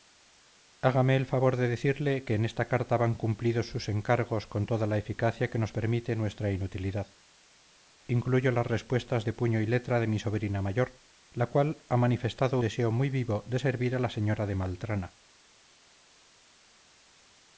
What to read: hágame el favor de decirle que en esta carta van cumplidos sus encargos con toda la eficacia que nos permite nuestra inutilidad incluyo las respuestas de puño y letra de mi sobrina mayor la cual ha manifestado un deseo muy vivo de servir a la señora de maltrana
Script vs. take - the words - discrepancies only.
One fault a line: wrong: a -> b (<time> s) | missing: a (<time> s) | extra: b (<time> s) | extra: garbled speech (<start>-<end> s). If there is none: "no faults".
missing: un (12.6 s)